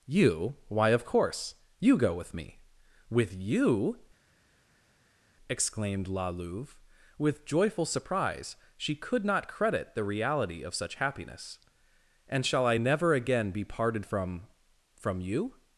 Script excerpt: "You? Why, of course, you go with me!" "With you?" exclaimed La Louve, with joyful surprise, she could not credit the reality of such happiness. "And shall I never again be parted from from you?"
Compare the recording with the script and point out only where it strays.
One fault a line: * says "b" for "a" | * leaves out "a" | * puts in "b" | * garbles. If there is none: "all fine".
all fine